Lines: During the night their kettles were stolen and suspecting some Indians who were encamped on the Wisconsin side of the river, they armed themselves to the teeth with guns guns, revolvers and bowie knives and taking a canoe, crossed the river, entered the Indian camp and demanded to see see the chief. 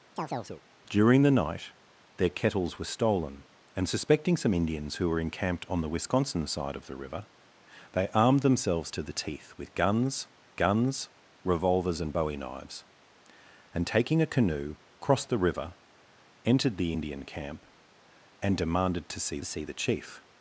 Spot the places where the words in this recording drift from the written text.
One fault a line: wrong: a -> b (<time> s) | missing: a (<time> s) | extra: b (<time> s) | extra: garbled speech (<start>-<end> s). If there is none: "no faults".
no faults